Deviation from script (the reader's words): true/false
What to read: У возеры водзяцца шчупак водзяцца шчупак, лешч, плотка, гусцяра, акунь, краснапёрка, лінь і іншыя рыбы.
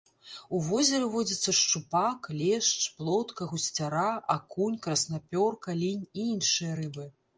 true